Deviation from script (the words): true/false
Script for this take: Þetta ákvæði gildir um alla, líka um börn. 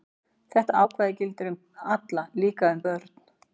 false